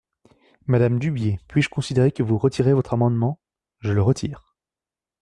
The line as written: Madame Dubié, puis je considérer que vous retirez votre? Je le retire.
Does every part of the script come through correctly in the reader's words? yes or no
no